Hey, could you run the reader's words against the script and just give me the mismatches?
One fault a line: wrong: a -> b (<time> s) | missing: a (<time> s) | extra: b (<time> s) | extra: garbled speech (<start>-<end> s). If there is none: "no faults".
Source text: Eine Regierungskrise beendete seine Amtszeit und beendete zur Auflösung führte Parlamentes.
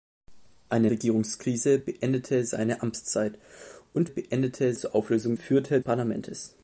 no faults